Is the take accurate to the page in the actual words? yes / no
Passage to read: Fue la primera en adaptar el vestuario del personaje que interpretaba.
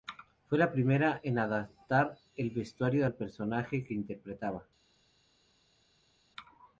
no